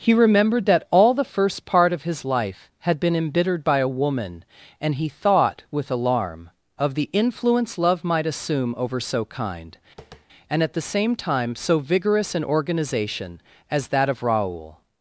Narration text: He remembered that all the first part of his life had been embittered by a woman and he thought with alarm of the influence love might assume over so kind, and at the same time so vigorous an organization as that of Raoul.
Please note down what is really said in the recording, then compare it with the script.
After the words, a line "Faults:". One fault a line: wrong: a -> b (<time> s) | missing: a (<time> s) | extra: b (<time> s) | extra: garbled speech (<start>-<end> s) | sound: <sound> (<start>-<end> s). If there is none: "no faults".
He remembered that all the first part of his life had been embittered by a woman and he thought with alarm of the influence love might assume over so kind, and at the same time so vigorous an organization as that of Raoul.
Faults:
sound: tap (10.0-10.3 s)